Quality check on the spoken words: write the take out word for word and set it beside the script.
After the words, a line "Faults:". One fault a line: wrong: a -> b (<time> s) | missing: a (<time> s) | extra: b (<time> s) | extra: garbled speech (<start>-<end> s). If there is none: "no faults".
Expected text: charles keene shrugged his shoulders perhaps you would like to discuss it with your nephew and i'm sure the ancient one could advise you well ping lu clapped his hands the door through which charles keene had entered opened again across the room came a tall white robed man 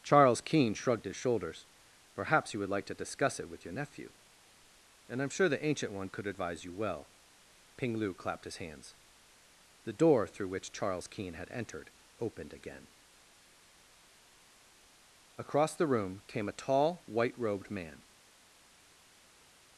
charles keene shrugged his shoulders perhaps you would like to discuss it with your nephew and i'm sure the ancient one could advise you well ping lu clapped his hands the door through which charles keene had entered opened again across the room came a tall white robed man
Faults:
no faults